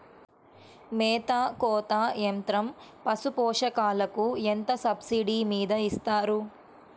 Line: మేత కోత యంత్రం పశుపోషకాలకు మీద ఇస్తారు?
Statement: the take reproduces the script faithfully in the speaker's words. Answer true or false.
false